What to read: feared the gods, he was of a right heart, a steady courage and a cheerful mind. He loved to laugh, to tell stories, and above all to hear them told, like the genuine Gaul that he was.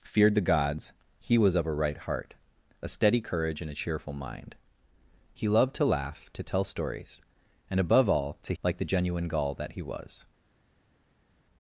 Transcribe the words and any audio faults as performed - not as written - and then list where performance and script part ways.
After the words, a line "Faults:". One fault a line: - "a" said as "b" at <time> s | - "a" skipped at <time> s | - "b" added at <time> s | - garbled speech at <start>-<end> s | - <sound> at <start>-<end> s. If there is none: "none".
feared the gods, he was of a right heart, a steady courage and a cheerful mind. He loved to laugh, to tell stories, and above all to like the genuine Gaul that he was.
Faults:
- "hear them told" skipped at 8.5 s